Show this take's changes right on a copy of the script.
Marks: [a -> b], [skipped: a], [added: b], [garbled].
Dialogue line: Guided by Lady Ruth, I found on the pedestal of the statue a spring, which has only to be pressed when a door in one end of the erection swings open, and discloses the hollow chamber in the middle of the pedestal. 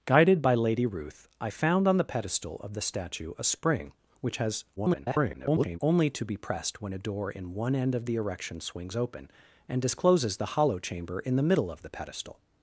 Guided by Lady Ruth, I found on the pedestal of the statue a spring, which has [garbled] only to be pressed when a door in one end of the erection swings open, and discloses the hollow chamber in the middle of the pedestal.